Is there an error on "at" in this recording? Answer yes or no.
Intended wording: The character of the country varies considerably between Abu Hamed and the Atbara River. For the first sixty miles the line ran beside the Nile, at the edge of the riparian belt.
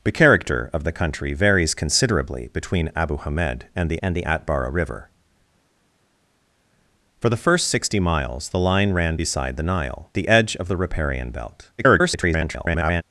yes